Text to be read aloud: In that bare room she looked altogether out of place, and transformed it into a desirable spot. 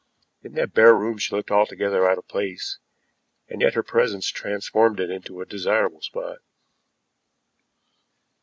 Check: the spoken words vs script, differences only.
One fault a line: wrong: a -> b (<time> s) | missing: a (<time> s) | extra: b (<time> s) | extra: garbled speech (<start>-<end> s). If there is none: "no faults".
extra: yet her presence (3.6 s)